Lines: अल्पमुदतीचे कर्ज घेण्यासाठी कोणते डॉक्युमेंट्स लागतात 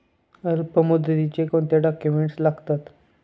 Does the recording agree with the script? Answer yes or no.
no